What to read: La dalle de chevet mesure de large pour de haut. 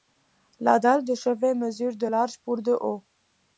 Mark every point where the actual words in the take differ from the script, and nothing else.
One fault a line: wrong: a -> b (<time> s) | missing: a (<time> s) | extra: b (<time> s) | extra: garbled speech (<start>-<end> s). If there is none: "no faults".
no faults